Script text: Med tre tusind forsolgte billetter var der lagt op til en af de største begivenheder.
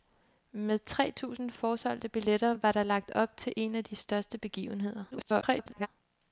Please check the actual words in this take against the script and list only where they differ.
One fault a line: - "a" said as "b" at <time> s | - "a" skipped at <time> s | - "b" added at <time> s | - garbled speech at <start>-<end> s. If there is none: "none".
- garbled speech at 5.1-5.9 s